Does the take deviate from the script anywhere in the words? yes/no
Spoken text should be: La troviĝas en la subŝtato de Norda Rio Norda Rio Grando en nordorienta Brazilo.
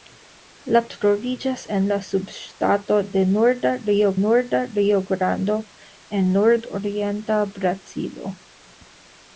no